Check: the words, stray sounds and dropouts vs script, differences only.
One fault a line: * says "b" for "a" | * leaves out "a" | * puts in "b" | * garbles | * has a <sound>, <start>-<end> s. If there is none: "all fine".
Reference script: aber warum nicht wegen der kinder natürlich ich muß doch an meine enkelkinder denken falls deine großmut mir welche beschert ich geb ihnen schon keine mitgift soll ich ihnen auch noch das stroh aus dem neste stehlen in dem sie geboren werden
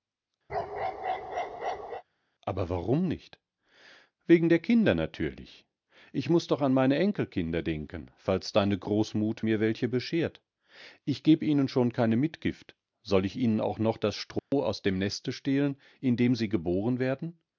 * has a bark, 0.5-2.0 s
* has a dropout, 14.4-14.5 s